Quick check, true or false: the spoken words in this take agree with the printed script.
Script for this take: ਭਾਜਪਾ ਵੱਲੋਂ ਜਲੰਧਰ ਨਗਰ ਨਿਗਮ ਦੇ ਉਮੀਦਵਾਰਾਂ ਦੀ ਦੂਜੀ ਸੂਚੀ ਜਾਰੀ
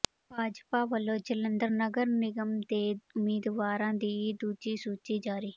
true